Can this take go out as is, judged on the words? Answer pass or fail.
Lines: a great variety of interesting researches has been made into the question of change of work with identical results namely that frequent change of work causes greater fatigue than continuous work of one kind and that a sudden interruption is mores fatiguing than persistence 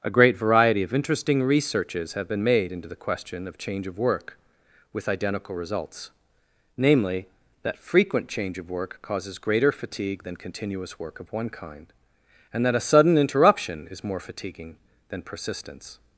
fail